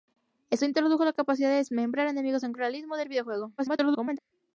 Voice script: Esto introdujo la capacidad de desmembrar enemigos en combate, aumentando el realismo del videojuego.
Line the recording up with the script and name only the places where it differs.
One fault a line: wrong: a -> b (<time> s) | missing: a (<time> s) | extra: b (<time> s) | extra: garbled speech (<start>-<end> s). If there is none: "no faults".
missing: combate aumentando (2.5 s)
extra: garbled speech (3.6-4.2 s)